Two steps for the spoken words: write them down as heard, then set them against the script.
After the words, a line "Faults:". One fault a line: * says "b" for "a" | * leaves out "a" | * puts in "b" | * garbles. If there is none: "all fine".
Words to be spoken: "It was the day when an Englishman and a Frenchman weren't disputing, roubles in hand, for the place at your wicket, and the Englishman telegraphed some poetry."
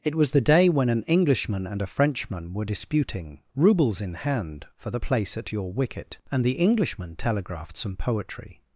"It was the day when an Englishman and a Frenchman were disputing, roubles in hand, for the place at your wicket, and the Englishman telegraphed some poetry."
Faults:
* says "were" for "weren't"